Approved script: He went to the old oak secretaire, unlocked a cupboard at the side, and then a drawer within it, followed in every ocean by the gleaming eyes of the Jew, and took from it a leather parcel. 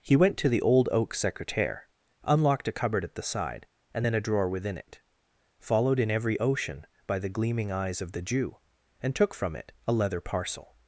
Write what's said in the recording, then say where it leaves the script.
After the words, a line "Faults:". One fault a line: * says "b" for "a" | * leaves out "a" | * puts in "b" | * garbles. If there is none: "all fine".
He went to the old oak secretaire, unlocked a cupboard at the side, and then a drawer within it, followed in every ocean by the gleaming eyes of the Jew, and took from it a leather parcel.
Faults:
all fine